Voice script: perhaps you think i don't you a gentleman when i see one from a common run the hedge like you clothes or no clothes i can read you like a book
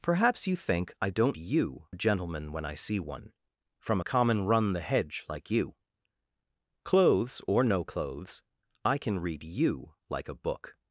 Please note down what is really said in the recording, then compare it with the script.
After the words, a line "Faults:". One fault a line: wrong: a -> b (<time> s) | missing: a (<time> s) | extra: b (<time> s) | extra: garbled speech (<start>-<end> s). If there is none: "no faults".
perhaps you think i don't you a gentleman when i see one from a common run the hedge like you clothes or no clothes i can read you like a book
Faults:
no faults